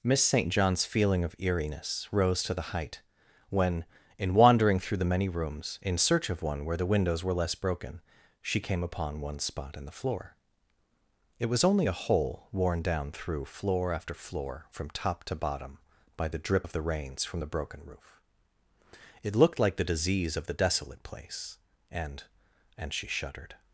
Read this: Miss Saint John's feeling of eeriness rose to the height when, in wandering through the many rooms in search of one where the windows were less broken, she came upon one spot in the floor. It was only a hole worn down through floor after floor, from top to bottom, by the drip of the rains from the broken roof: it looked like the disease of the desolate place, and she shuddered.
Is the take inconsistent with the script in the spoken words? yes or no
yes